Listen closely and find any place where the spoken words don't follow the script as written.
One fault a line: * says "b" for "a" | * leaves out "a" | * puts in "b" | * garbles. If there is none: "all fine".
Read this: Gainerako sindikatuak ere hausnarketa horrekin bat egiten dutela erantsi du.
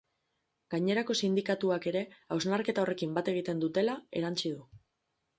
all fine